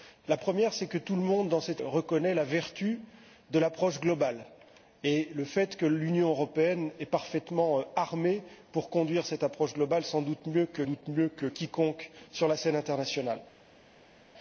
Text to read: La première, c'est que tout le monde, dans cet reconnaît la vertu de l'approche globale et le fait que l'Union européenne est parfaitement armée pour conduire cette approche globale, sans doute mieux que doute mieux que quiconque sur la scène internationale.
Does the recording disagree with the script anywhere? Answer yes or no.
no